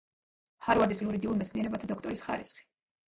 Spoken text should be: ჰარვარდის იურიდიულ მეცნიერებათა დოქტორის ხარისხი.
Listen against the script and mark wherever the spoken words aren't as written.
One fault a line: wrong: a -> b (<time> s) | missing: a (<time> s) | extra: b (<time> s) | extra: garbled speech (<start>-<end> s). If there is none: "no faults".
no faults